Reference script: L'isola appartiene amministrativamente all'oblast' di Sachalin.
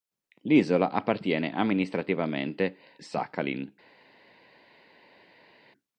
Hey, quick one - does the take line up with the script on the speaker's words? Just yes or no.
no